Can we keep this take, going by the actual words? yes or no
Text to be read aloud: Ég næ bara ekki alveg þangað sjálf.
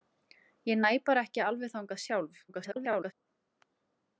no